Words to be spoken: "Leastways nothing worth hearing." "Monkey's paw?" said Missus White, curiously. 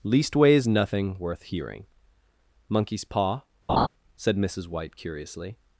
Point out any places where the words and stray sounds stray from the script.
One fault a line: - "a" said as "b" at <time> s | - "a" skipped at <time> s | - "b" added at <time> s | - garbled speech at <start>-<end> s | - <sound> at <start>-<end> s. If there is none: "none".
- laugh at 3.7-3.9 s